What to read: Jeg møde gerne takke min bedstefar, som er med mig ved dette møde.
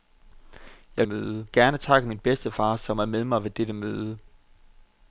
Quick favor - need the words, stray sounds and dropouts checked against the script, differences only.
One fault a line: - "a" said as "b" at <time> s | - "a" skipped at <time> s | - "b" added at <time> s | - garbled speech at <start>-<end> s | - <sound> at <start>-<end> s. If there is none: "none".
none